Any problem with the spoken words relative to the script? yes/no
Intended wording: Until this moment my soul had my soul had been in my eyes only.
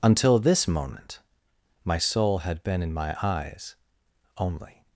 yes